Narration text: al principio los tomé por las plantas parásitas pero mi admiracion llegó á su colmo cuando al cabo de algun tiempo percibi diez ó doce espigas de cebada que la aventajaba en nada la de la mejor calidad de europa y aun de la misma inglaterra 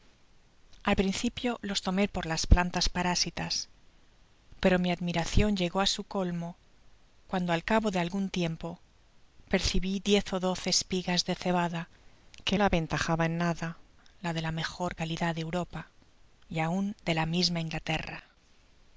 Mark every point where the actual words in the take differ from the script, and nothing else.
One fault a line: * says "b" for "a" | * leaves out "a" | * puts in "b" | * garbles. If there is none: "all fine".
all fine